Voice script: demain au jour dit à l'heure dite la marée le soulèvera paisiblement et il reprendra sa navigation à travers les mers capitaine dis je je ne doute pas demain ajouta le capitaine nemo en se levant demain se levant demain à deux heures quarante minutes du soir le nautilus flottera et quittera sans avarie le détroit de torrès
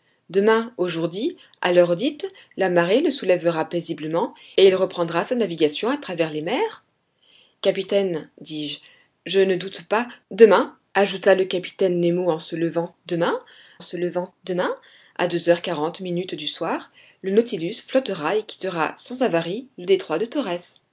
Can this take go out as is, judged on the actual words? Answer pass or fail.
pass